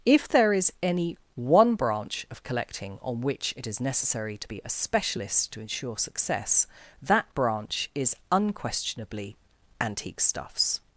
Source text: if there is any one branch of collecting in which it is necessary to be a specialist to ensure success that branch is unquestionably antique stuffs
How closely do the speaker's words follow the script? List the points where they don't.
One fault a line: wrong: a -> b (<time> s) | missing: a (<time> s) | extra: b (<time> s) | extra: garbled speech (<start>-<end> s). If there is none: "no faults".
wrong: in -> on (3.0 s)